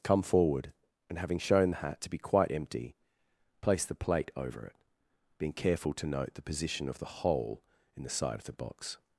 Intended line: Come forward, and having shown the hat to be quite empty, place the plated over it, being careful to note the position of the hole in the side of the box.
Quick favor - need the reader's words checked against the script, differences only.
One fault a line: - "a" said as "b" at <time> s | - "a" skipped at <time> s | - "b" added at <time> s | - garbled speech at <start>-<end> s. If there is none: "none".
- "plated" said as "plate" at 3.9 s